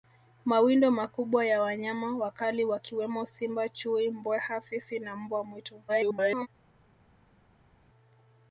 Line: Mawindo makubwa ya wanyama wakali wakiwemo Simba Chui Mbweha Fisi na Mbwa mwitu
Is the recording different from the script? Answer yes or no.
yes